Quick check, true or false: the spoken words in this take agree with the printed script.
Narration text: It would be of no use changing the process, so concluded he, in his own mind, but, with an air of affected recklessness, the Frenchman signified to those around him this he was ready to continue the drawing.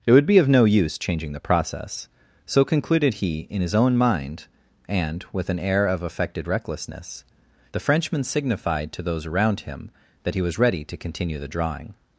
false